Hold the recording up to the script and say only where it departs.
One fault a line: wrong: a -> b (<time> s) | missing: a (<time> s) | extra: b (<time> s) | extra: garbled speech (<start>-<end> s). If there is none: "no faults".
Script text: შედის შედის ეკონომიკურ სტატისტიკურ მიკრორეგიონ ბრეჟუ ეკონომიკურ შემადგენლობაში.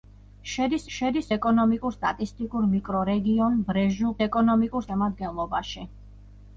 no faults